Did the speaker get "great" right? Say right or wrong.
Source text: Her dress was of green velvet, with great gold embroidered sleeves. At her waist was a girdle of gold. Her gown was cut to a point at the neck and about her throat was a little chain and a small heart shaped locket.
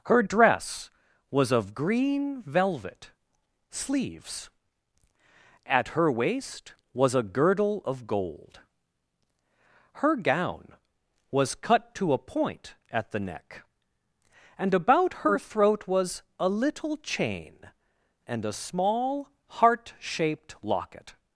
wrong